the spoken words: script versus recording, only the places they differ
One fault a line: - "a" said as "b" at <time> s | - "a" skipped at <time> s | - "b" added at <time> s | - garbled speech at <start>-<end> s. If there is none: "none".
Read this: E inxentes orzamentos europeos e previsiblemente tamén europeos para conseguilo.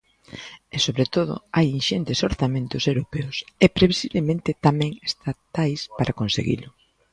- "sobre todo hai" added at 0.8 s
- "europeos" said as "estatais" at 5.1 s